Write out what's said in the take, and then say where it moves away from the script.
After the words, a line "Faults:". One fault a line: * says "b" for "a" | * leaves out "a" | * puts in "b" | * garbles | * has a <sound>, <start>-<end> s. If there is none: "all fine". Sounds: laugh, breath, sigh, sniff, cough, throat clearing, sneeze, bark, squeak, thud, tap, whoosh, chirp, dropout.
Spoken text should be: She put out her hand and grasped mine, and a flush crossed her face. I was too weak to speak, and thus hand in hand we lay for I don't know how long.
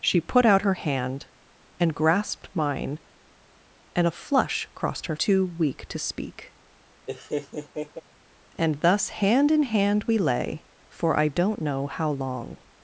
She put out her hand and grasped mine, and a flush crossed her too weak to speak, and thus hand in hand we lay for I don't know how long.
Faults:
* leaves out "face I was"
* has a laugh, 7.1-8.0 s